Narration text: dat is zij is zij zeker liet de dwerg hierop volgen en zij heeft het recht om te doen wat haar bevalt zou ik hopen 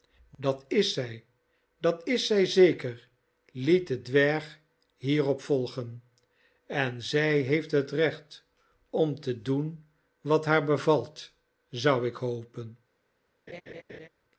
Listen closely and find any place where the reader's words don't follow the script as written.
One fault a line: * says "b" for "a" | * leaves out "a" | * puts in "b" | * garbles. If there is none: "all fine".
* puts in "dat"